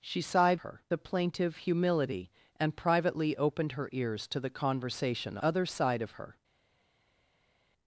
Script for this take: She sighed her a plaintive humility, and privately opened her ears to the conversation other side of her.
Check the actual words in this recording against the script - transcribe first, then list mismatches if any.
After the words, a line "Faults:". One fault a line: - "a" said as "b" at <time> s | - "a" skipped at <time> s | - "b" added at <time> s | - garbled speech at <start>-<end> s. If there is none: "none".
She sighed her a plaintive humility, and privately opened her ears to the conversation other side of her.
Faults:
none